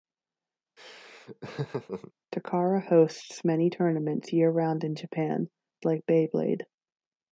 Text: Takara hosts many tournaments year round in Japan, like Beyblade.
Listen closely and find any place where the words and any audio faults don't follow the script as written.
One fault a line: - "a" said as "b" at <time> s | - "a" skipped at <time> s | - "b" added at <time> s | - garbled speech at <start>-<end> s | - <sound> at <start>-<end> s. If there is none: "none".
- laugh at 0.8-2.1 s